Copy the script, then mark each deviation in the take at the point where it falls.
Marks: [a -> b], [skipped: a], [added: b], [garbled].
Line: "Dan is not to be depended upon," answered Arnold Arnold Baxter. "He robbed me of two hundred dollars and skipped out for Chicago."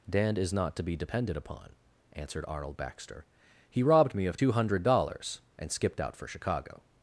"Dan is not to be depended upon," answered Arnold [skipped: Arnold] Baxter. "He robbed me of two hundred dollars and skipped out for Chicago."